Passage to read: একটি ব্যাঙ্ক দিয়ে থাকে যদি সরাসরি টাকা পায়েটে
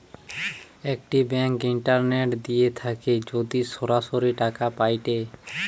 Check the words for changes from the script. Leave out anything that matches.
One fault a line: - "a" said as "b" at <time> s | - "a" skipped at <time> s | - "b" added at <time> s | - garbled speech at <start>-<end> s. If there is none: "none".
- "ইন্টারনেট" added at 1.7 s